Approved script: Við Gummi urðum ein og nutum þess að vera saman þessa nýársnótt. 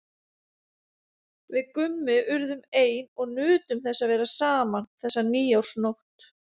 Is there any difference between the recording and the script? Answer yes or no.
no